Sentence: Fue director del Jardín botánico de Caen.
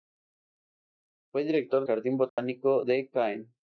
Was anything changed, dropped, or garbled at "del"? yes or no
yes